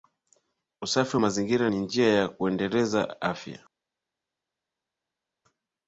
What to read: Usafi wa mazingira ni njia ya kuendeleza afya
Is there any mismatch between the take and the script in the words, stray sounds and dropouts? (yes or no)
no